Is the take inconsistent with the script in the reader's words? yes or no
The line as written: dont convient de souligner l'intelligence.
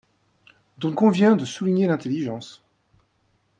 no